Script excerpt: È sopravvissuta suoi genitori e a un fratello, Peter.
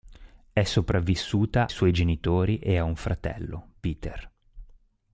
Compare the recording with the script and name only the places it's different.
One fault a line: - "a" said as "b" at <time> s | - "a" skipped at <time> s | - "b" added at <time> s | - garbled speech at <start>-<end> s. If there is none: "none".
none